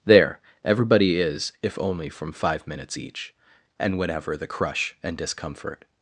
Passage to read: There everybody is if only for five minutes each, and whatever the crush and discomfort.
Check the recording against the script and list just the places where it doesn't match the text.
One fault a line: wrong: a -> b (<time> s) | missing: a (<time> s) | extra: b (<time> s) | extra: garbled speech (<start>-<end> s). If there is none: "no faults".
wrong: for -> from (2.1 s)